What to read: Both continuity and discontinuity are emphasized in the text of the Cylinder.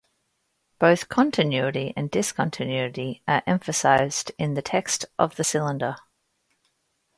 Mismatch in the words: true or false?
false